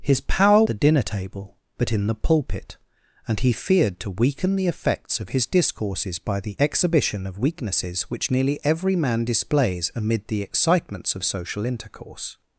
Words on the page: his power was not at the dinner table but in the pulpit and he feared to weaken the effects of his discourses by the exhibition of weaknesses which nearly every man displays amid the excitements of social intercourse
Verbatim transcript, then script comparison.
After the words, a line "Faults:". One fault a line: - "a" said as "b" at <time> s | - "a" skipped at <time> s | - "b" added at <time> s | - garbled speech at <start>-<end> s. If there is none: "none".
his power the dinner table but in the pulpit and he feared to weaken the effects of his discourses by the exhibition of weaknesses which nearly every man displays amid the excitements of social intercourse
Faults:
- "was not at" skipped at 0.6 s